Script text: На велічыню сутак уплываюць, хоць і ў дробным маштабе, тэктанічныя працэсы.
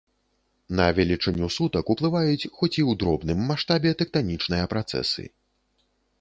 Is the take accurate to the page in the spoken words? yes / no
yes